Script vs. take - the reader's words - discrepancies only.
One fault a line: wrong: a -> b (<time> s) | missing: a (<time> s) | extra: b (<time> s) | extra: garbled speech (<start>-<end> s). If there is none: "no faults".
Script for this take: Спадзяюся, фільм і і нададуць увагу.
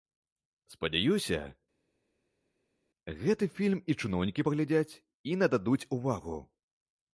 extra: гэты (3.2 s)
extra: чыноўнікі паглядзяць (4.0 s)